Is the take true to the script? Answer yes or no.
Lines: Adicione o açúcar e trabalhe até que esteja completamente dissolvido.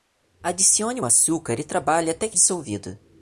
no